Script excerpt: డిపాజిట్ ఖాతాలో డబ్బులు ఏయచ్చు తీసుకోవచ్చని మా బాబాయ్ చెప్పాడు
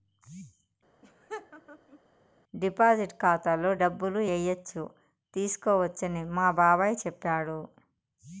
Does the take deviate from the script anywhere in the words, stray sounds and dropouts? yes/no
yes